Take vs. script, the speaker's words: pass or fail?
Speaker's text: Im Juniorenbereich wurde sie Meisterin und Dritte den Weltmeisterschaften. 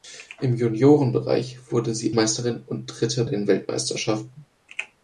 pass